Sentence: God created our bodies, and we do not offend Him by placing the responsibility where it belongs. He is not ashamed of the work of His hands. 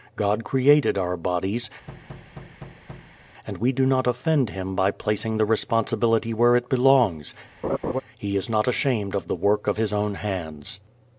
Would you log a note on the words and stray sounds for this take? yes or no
yes